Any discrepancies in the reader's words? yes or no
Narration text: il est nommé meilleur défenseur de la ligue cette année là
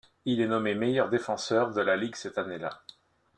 no